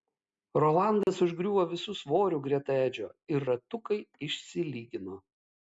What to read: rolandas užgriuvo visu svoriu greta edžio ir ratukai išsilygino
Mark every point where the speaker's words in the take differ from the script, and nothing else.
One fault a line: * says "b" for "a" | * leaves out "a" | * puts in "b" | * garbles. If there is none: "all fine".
all fine